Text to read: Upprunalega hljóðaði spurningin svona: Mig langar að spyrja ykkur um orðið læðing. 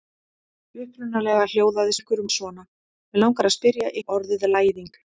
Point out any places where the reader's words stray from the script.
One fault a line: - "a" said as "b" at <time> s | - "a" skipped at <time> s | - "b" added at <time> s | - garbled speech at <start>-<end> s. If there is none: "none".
- "spurningin" said as "ykkur" at 2.0 s
- "ykkur" skipped at 3.9 s